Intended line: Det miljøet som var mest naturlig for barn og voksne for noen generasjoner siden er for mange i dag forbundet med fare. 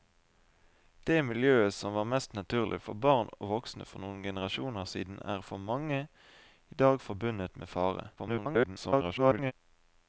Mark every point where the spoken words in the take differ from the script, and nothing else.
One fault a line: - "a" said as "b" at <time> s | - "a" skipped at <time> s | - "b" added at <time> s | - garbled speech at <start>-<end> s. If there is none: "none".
- garbled speech at 8.2-9.5 s